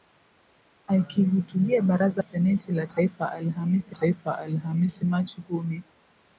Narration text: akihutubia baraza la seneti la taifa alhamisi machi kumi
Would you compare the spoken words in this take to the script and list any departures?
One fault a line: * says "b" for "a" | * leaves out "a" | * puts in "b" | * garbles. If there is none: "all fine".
* puts in "seneti"
* says "taifa alhamisi" for "seneti la"